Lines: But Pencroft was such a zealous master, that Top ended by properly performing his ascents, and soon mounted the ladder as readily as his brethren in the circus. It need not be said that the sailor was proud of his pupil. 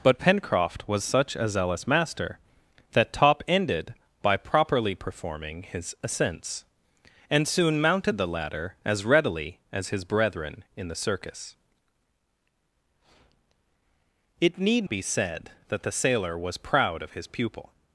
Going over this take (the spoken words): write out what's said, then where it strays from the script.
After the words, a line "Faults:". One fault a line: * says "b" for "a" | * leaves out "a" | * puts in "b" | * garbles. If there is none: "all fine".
But Pencroft was such a zealous master, that Top ended by properly performing his ascents, and soon mounted the ladder as readily as his brethren in the circus. It need be said that the sailor was proud of his pupil.
Faults:
* leaves out "not"